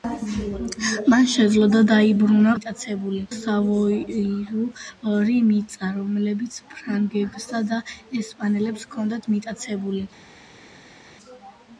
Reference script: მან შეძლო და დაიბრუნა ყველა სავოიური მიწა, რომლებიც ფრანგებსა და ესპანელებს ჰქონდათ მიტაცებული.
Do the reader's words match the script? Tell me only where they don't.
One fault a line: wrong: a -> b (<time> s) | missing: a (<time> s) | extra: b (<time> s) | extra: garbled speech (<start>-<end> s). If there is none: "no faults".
wrong: ყველა -> მიტაცებული (2.6 s)